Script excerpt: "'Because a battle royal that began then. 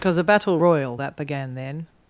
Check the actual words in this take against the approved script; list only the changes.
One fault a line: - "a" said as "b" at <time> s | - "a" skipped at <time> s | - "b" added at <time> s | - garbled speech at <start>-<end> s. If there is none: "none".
none